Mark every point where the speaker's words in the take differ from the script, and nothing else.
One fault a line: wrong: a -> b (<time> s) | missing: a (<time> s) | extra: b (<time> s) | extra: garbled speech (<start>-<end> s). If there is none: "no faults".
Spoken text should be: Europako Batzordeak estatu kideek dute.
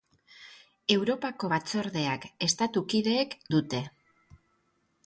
no faults